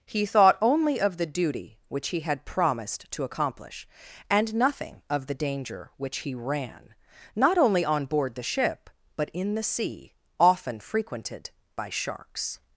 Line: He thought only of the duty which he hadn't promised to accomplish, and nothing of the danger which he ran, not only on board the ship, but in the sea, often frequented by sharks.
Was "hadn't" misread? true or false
true